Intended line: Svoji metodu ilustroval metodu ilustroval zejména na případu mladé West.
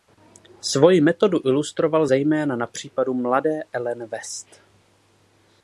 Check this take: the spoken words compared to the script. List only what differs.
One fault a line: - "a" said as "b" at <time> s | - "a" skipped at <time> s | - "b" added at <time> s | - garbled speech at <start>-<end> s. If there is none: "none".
- "metodu ilustroval" skipped at 2.1 s
- "Ellen" added at 3.7 s